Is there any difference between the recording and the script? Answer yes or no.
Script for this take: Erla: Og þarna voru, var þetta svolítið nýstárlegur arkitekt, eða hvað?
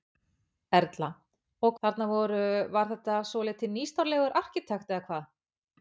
no